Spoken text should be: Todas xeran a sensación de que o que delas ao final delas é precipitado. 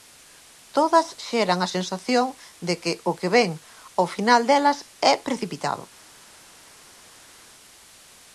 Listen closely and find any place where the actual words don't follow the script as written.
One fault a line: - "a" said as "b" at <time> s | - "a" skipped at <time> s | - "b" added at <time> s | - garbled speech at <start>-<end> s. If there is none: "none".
- "delas" said as "vén" at 3.4 s